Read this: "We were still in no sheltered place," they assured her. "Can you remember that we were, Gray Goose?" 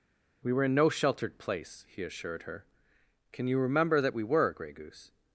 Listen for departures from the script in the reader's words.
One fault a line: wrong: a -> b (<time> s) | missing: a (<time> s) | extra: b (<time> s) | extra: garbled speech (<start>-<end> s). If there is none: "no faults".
missing: still (0.6 s)
wrong: they -> he (1.9 s)